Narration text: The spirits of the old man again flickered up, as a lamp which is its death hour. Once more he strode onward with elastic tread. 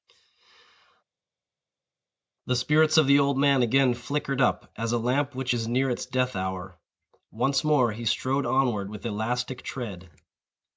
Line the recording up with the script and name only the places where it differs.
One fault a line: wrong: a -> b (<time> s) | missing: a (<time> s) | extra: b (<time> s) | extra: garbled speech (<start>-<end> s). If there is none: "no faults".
extra: near (5.7 s)